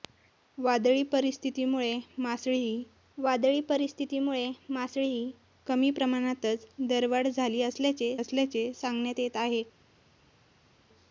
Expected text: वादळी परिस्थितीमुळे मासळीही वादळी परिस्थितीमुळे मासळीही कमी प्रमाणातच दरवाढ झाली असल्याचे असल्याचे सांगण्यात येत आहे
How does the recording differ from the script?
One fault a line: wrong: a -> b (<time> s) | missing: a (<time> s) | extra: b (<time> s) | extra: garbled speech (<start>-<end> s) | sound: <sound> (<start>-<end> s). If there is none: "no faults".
no faults